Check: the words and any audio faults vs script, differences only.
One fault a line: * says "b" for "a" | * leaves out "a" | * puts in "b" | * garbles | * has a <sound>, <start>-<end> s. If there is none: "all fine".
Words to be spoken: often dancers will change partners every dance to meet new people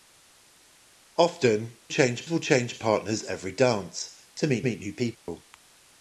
* says "change" for "dancers"
* puts in "meet"
* has a dropout, 5.2-5.3 s